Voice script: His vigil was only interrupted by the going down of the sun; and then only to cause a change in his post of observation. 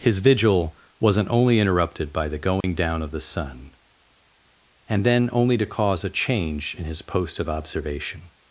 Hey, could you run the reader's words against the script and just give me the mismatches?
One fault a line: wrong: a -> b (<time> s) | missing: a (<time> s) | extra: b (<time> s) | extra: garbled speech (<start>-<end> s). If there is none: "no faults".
wrong: was -> wasn't (1.0 s)